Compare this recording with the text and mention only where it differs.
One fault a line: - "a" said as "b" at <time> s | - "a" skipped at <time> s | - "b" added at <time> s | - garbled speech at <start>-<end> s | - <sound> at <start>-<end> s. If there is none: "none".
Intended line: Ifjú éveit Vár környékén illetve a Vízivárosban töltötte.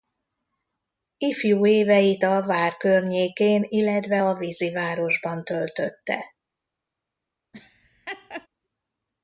- "a" added at 2.2 s
- laugh at 7.5-8.5 s